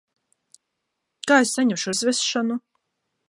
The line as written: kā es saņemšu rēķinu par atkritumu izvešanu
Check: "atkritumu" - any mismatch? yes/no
yes